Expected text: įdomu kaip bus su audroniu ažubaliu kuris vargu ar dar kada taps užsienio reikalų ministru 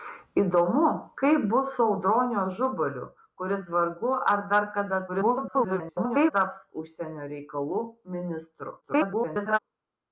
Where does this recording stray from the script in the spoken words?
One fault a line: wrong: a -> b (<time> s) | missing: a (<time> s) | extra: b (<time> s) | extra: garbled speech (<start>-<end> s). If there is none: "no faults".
extra: garbled speech (5.1-6.3 s)
extra: garbled speech (8.8-9.6 s)